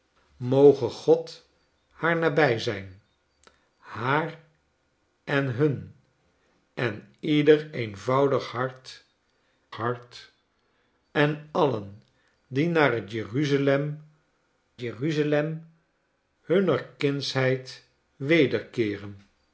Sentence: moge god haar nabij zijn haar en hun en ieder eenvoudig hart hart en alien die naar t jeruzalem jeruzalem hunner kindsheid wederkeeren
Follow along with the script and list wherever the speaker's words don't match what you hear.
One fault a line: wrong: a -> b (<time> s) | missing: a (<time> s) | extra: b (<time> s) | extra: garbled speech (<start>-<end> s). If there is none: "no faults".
no faults